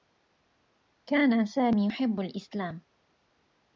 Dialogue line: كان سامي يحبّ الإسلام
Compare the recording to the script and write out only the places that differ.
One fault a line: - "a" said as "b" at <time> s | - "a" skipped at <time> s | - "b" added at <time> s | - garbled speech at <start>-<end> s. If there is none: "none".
none